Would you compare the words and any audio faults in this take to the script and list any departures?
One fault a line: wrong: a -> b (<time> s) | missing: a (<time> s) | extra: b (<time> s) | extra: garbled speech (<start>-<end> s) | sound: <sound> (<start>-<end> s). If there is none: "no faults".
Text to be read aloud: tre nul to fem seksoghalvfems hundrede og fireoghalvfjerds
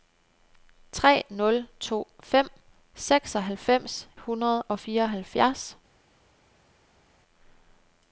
no faults